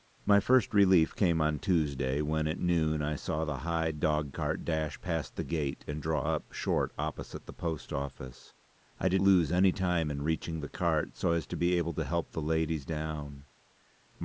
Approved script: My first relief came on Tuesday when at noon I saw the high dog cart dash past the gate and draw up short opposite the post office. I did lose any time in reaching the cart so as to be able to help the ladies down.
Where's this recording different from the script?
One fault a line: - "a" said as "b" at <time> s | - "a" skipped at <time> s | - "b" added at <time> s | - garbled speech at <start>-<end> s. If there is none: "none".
none